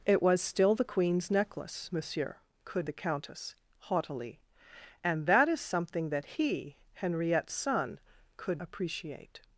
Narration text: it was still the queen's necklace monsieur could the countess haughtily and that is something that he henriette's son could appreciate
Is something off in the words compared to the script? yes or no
no